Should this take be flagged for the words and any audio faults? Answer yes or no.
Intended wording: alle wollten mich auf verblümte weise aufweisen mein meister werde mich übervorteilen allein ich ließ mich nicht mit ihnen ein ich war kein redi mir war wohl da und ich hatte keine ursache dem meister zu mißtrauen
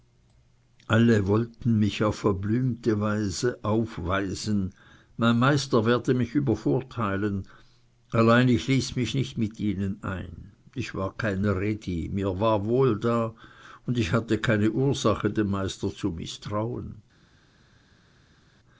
no